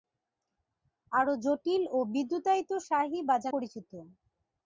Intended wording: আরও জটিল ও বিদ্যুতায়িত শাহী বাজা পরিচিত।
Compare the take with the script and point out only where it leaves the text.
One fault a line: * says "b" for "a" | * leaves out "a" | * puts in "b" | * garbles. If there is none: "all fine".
all fine